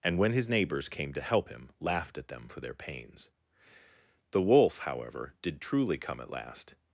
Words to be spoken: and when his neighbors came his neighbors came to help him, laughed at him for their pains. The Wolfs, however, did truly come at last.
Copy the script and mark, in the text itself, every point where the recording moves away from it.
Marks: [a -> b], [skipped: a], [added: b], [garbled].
and when his neighbors came [skipped: his neighbors came] to help him, laughed at [him -> them] for their pains. The [Wolfs, -> Wolf] however, did truly come at last.